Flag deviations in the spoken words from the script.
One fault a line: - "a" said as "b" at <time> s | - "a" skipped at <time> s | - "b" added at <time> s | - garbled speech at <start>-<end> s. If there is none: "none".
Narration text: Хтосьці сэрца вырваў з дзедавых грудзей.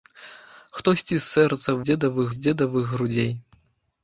- "вырваў" said as "дзедавых" at 1.9 s